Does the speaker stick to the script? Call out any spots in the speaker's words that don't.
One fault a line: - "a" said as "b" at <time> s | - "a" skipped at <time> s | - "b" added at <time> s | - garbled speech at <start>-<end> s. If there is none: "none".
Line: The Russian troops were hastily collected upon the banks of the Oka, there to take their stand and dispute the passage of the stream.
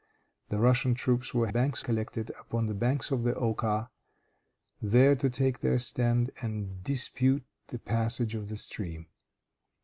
- "hastily" said as "banks" at 1.5 s